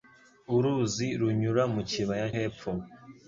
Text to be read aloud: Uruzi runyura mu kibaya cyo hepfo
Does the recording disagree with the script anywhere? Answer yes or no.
yes